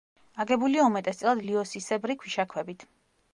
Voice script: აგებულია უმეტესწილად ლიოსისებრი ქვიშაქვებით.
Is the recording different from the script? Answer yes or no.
no